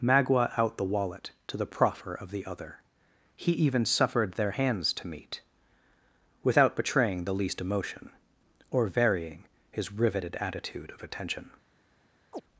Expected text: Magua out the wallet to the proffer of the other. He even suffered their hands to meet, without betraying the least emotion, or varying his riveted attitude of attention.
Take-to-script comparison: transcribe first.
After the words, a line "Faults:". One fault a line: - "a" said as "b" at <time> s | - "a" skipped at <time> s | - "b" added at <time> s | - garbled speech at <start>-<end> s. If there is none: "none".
Magua out the wallet to the proffer of the other. He even suffered their hands to meet, without betraying the least emotion, or varying his riveted attitude of attention.
Faults:
none